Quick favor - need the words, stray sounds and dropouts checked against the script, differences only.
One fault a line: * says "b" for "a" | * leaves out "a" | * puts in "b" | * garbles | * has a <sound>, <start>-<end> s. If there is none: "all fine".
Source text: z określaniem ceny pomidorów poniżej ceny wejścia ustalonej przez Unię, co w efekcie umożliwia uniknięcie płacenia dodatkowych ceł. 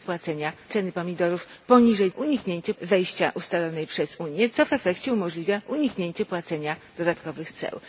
* says "płacenia" for "określaniem"
* says "uniknięcie" for "ceny"